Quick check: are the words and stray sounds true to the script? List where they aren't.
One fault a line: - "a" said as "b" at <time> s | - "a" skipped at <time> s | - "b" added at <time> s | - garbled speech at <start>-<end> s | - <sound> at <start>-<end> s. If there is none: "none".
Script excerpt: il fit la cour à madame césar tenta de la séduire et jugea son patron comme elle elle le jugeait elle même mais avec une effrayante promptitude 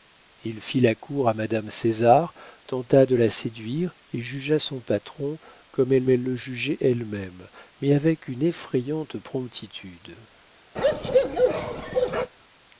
- bark at 10.8-12.3 s